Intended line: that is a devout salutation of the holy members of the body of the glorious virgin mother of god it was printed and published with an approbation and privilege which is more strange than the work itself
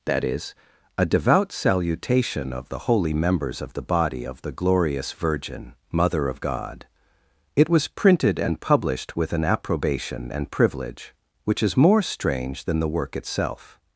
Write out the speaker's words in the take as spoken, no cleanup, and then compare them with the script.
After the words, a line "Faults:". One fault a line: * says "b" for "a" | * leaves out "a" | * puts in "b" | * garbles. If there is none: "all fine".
that is a devout salutation of the holy members of the body of the glorious virgin mother of god it was printed and published with an approbation and privilege which is more strange than the work itself
Faults:
all fine